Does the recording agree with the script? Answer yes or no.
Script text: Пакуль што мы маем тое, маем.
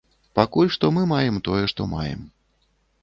no